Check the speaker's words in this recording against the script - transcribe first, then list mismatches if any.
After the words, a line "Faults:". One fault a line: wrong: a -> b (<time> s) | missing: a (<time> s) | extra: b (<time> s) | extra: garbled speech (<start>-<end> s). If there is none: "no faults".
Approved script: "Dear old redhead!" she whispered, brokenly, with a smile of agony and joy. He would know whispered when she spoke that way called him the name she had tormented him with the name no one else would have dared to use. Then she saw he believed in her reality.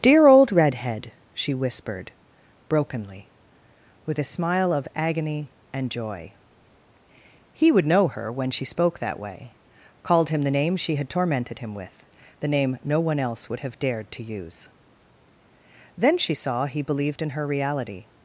"Dear old redhead!" she whispered, brokenly, with a smile of agony and joy. He would know her when she spoke that way called him the name she had tormented him with the name no one else would have dared to use. Then she saw he believed in her reality.
Faults:
wrong: whispered -> her (8.1 s)